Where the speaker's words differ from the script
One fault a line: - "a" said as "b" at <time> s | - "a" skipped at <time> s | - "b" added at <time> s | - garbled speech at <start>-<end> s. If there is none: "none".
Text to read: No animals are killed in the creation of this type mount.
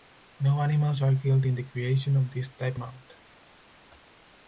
none